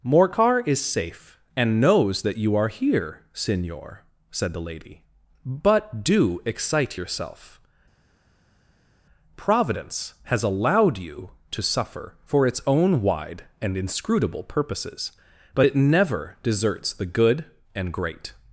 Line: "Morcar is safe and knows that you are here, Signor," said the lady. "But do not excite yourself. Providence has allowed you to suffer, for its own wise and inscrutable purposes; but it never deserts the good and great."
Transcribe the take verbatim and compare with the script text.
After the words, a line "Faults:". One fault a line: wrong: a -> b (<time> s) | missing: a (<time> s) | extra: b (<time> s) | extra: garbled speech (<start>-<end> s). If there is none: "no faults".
"Morcar is safe and knows that you are here, Signor," said the lady. "But do excite yourself. Providence has allowed you to suffer, for its own wide and inscrutable purposes; but it never deserts the good and great."
Faults:
missing: not (6.4 s)
wrong: wise -> wide (13.0 s)